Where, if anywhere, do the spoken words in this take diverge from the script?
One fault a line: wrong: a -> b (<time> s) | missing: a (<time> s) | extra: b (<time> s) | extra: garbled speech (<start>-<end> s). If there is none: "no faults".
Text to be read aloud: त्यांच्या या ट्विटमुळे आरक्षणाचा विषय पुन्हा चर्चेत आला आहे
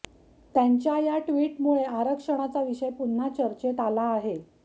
no faults